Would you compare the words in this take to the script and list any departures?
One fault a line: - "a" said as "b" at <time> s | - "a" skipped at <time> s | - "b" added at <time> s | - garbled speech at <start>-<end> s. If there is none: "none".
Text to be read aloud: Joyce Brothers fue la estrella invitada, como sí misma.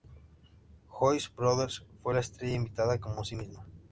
none